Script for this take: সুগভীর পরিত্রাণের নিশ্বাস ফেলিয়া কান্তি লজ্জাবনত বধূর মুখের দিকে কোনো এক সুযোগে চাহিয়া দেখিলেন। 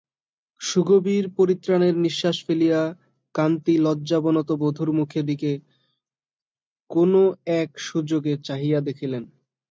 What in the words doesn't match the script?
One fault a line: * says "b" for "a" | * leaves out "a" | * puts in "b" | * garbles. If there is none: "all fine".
all fine